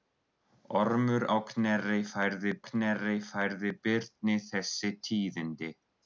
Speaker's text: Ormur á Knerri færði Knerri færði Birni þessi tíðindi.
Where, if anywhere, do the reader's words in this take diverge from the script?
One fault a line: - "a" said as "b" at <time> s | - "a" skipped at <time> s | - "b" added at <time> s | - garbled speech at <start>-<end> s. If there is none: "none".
none